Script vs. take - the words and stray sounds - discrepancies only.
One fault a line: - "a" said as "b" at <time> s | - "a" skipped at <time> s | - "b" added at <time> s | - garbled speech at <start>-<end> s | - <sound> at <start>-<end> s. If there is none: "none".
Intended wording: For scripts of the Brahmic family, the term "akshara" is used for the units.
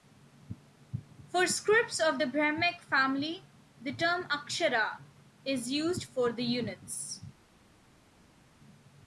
none